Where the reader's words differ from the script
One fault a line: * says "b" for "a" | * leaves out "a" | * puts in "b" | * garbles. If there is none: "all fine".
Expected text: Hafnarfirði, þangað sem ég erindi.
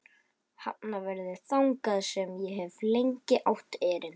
* puts in "hef lengi átt"